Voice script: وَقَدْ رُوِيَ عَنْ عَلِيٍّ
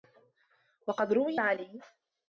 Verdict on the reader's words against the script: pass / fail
fail